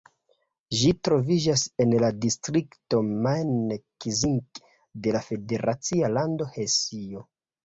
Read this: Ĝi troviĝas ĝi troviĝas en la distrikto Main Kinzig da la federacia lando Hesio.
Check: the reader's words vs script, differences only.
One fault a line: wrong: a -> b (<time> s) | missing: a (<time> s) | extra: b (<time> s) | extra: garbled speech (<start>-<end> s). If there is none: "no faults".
missing: ĝi troviĝas (1.6 s)
wrong: da -> de (5.0 s)